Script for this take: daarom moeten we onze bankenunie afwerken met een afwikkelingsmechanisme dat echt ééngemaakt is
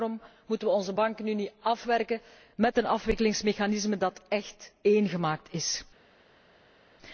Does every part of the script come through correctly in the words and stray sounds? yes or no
yes